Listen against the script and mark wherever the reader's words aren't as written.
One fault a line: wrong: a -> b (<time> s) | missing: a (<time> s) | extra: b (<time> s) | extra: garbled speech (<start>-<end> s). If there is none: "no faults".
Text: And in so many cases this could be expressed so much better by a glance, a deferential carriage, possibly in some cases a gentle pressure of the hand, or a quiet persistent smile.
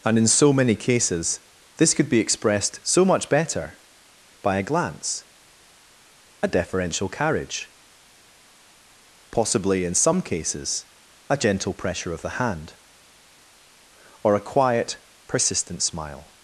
no faults